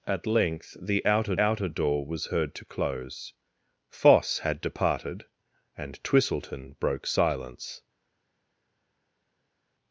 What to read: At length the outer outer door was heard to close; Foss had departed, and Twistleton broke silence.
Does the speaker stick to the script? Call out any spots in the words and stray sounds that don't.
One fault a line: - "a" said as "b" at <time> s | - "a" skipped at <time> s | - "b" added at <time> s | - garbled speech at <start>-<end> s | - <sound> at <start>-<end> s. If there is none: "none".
none